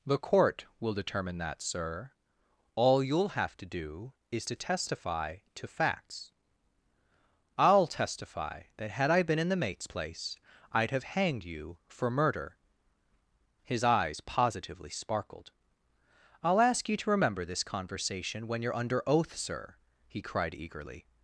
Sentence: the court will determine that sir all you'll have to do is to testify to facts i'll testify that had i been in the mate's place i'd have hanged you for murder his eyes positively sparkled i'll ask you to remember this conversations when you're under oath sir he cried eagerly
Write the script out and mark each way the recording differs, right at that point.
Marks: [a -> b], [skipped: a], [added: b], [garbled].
the court will determine that sir all you'll have to do is to testify to facts i'll testify that had i been in the mate's place i'd have hanged you for murder his eyes positively sparkled i'll ask you to remember this [conversations -> conversation] when you're under oath sir he cried eagerly